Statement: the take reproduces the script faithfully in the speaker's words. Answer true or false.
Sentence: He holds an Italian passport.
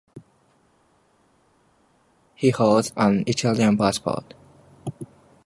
true